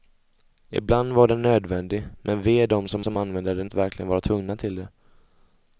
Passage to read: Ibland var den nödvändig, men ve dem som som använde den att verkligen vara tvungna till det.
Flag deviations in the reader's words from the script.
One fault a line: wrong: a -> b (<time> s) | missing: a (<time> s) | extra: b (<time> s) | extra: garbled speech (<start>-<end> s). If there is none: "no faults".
no faults